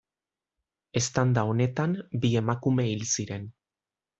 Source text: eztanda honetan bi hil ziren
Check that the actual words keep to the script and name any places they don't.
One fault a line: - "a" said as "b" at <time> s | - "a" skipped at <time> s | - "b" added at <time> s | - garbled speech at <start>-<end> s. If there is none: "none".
- "emakume" added at 2.4 s